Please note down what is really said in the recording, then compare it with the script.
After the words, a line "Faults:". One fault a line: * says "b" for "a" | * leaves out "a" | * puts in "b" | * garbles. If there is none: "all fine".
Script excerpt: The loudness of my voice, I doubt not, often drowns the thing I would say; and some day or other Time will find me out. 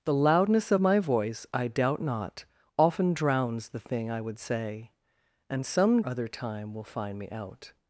The loudness of my voice, I doubt not, often drowns the thing I would say; and some other Time will find me out.
Faults:
* leaves out "day or"